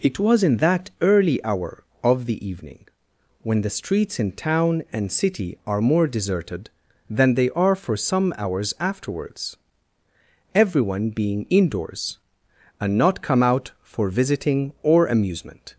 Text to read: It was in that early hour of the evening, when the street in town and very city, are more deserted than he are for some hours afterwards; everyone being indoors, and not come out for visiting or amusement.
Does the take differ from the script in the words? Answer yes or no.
yes